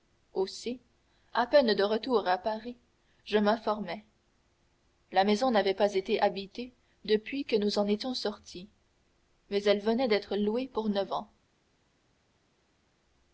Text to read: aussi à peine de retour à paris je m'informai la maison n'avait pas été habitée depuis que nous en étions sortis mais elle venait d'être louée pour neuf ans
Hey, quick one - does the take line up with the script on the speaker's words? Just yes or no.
yes